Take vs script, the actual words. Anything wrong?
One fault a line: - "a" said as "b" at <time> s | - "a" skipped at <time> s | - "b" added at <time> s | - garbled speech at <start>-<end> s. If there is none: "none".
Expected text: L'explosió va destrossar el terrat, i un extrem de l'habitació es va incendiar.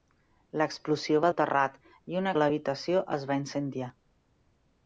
- "destrossar" skipped at 1.3 s
- "extrem" skipped at 2.3 s